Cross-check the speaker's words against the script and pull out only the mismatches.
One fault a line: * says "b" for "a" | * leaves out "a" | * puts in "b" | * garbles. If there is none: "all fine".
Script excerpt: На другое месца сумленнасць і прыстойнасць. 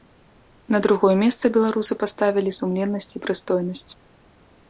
* puts in "беларусы паставілі"